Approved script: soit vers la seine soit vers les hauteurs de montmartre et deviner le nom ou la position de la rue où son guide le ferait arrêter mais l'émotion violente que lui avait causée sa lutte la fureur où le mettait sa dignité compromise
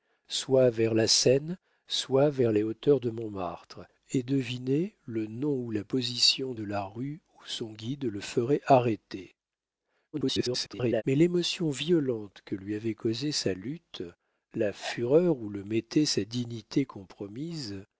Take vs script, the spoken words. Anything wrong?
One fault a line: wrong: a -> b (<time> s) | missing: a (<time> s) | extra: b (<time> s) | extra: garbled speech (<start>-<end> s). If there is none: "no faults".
extra: garbled speech (10.1-11.0 s)